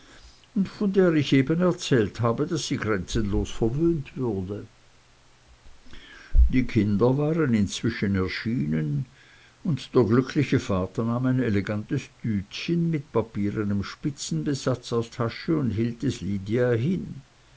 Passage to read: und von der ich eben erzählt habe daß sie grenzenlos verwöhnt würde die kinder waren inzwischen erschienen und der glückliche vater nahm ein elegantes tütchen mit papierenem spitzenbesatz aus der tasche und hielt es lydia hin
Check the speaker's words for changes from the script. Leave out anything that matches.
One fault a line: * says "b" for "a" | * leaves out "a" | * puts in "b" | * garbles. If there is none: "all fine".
* leaves out "der"